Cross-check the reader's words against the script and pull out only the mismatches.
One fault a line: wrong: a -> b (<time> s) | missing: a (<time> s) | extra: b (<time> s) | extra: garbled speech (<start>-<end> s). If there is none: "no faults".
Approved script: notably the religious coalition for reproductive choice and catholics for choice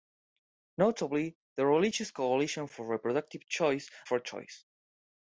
missing: and catholics (3.9 s)